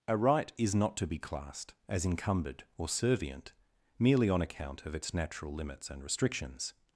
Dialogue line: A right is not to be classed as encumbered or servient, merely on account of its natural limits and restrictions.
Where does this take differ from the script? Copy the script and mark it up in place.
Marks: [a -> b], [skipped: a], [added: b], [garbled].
A right is not to be classed as encumbered or servient, merely on account of its natural limits and restrictions.